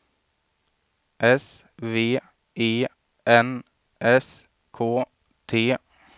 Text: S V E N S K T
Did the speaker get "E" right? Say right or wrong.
right